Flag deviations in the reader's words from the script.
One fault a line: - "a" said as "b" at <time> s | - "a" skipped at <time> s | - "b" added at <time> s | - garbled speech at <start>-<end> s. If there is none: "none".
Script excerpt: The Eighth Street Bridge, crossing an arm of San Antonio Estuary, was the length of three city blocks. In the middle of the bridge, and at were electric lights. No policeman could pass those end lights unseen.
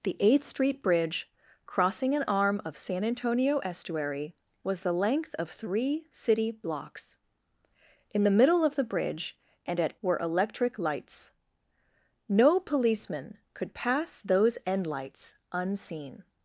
none